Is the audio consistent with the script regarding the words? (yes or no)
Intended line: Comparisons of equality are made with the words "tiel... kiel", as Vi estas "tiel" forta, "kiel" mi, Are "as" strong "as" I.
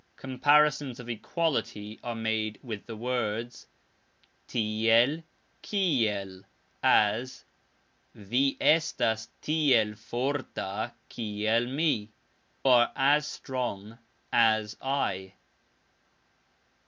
yes